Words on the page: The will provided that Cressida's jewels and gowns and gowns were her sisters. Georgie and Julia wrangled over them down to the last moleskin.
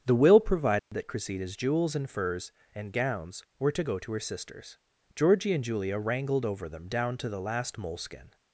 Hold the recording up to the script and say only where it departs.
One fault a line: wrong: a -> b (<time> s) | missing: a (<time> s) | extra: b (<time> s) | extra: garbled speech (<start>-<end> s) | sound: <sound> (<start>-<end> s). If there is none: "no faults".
sound: dropout (0.8-0.9 s)
wrong: gowns -> furs (2.1 s)
extra: to go to (3.7 s)